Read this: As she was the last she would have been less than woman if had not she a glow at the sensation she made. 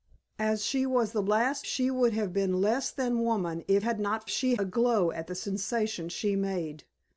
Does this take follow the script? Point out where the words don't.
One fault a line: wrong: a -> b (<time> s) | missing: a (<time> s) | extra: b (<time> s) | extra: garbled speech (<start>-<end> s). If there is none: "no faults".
no faults